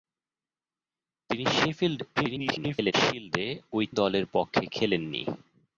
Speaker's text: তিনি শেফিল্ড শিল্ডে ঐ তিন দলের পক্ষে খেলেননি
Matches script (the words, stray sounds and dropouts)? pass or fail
fail